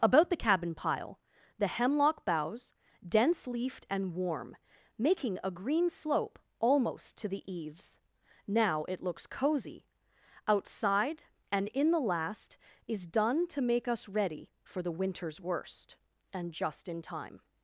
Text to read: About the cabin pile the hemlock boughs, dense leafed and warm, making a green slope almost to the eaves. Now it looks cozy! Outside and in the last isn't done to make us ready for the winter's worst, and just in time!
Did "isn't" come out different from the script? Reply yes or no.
yes